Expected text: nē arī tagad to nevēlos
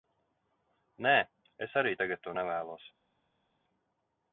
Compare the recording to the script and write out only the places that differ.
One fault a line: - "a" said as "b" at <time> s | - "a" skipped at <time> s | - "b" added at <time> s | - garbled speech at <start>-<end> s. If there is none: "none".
- "es" added at 1.7 s